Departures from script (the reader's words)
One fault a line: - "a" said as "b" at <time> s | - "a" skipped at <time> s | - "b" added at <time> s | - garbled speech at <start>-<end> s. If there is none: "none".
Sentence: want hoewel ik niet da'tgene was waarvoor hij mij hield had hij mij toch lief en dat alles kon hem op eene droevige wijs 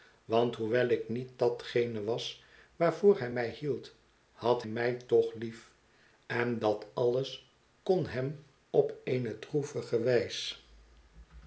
- "hij" skipped at 4.6 s